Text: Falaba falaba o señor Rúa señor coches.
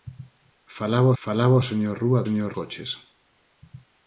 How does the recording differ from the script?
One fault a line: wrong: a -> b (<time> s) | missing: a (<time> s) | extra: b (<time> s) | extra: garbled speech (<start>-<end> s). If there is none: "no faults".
no faults